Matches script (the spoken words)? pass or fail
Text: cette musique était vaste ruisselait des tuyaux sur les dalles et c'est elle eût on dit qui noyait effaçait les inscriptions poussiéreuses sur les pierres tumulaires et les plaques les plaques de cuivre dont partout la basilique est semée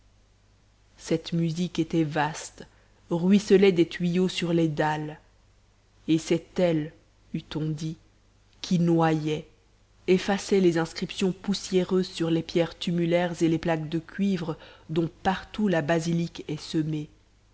fail